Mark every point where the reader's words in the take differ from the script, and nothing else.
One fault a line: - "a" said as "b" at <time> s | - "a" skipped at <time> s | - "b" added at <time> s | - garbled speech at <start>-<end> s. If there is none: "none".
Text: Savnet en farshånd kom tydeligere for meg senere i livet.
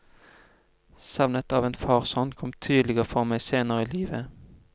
- "av" added at 1.5 s